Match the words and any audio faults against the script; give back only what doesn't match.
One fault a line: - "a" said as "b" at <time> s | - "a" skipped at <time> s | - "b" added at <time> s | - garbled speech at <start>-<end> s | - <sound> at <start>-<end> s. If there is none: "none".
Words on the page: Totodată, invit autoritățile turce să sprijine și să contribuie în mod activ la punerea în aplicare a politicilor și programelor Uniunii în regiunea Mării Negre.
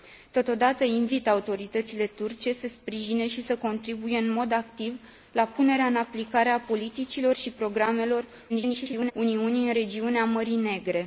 - garbled speech at 8.5-9.1 s